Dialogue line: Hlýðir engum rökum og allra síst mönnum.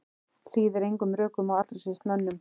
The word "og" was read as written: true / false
true